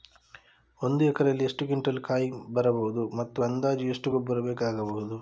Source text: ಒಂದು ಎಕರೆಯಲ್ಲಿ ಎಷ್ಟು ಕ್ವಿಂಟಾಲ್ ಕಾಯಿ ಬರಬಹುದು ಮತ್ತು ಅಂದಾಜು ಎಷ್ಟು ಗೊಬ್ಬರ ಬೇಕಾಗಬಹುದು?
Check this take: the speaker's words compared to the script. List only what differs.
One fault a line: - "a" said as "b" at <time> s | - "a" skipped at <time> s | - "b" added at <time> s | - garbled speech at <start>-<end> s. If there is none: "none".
none